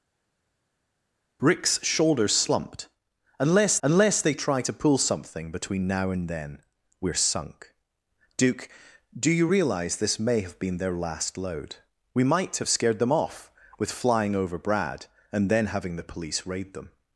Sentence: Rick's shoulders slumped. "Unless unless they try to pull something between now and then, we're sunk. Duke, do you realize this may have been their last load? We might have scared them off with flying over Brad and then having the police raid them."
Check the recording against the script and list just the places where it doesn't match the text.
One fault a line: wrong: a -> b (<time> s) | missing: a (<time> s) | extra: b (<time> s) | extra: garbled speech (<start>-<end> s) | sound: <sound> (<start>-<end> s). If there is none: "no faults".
no faults